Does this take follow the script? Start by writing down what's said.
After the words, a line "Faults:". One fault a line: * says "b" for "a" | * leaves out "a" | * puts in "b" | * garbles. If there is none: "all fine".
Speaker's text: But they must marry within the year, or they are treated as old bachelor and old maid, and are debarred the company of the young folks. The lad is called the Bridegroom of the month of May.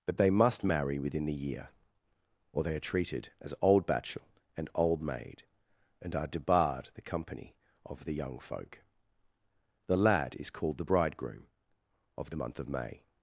But they must marry within the year, or they are treated as old bachelor and old maid, and are debarred the company of the young folk. The lad is called the Bridegroom of the month of May.
Faults:
* says "folk" for "folks"